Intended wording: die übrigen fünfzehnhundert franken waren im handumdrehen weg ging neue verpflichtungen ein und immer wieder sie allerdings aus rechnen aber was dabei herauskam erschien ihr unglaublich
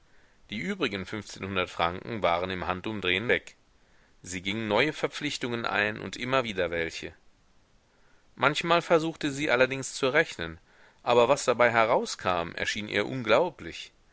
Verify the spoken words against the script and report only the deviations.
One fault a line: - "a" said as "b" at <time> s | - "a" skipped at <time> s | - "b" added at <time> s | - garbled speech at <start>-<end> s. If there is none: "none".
- "sie" added at 4.2 s
- "welche manchmal versuchte" added at 6.7 s
- "aus" said as "zu" at 9.9 s